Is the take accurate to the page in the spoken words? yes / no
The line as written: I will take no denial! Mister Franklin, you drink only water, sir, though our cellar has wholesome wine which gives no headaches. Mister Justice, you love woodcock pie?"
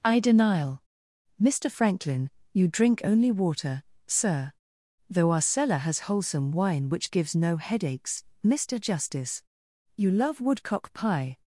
no